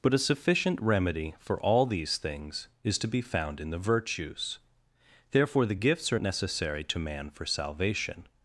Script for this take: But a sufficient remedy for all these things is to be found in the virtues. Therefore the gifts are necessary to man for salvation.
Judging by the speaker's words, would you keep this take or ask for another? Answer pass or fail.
pass